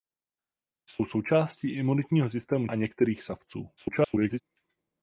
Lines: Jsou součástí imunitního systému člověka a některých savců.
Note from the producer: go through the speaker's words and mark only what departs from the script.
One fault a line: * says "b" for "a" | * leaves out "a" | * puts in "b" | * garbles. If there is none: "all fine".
* leaves out "člověka"
* garbles